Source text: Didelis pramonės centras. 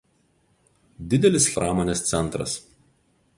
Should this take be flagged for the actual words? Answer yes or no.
no